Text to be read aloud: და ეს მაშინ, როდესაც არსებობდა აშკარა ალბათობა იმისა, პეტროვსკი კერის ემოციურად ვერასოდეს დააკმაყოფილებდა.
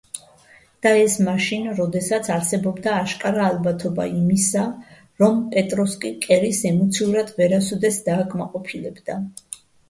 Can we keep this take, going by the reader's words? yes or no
no